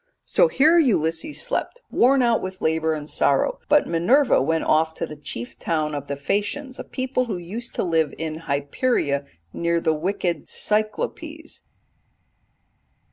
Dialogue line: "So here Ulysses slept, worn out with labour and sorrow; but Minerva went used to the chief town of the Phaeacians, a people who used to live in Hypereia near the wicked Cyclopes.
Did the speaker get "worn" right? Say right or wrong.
right